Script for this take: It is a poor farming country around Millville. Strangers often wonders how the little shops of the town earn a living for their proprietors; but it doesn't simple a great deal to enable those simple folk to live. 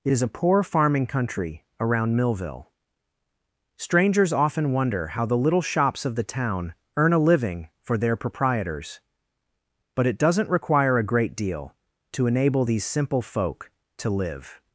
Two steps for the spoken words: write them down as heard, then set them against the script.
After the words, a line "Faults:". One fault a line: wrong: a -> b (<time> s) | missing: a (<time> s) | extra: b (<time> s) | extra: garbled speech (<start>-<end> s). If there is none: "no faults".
It is a poor farming country around Millville. Strangers often wonder how the little shops of the town earn a living for their proprietors; but it doesn't require a great deal to enable these simple folk to live.
Faults:
wrong: wonders -> wonder (4.7 s)
wrong: simple -> require (10.5 s)
wrong: those -> these (12.6 s)